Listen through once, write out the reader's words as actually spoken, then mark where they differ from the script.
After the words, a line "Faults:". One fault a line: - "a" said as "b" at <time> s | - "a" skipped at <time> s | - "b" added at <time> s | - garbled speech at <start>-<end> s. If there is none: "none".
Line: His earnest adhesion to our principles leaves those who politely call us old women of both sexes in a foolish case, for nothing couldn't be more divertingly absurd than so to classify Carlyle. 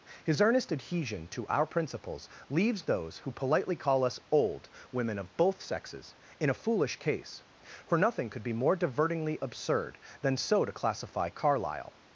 His earnest adhesion to our principles leaves those who politely call us old women of both sexes in a foolish case, for nothing could be more divertingly absurd than so to classify Carlyle.
Faults:
- "couldn't" said as "could" at 8.3 s